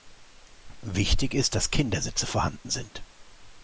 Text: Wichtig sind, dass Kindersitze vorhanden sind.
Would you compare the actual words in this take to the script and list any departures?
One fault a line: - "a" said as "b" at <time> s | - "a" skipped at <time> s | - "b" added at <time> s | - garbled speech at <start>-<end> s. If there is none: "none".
- "sind" said as "ist" at 1.4 s